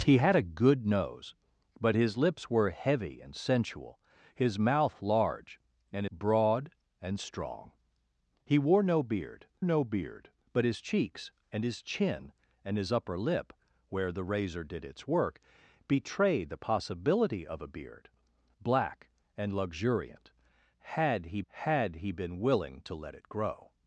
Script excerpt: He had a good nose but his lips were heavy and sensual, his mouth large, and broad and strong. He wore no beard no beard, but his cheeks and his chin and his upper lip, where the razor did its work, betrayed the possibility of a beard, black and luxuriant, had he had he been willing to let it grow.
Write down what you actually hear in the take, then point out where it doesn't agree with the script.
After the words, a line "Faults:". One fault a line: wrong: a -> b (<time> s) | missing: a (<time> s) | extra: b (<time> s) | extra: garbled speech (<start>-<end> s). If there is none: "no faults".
He had a good nose but his lips were heavy and sensual, his mouth large, and broad and strong. He wore no beard no beard, but his cheeks and his chin and his upper lip, where the razor did its work, betrayed the possibility of a beard, black and luxuriant, had he had he been willing to let it grow.
Faults:
no faults